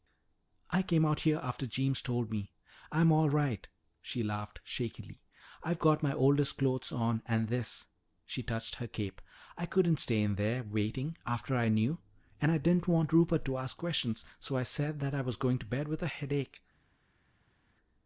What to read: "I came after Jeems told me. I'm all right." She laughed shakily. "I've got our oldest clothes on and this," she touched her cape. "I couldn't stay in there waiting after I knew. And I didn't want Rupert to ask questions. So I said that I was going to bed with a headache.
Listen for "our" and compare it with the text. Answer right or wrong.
wrong